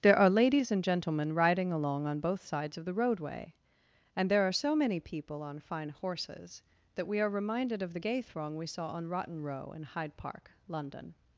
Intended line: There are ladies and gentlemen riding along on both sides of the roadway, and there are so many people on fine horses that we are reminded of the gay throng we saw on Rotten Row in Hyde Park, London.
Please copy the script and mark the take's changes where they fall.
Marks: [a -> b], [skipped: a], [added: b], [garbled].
There are ladies and gentlemen riding along on both sides of the roadway, and there are so many people on fine horses that we are reminded of the gay throng we saw on Rotten Row in Hyde Park, London.